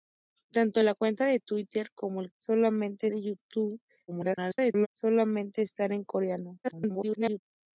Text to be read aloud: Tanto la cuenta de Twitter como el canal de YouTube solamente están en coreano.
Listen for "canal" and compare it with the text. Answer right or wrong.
wrong